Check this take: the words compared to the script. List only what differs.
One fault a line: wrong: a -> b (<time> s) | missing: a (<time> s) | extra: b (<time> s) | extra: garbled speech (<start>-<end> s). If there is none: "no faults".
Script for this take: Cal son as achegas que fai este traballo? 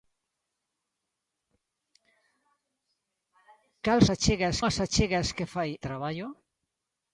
wrong: son -> achegas (4.1 s)
missing: este (5.7 s)